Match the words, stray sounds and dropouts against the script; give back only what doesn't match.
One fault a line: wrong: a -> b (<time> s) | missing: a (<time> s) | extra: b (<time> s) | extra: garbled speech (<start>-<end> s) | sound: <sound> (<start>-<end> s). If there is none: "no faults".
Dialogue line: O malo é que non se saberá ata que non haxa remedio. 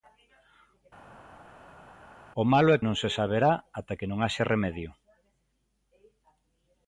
missing: que (2.8 s)